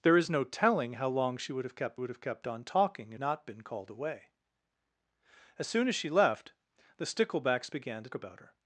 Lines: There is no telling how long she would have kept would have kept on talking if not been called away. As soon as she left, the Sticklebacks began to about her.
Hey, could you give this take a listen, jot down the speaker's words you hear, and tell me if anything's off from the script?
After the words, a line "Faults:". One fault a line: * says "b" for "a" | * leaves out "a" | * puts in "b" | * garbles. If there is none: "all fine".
There is no telling how long she would have kept would have kept on talking if not been called away. As soon as she left, the Sticklebacks began to about her.
Faults:
all fine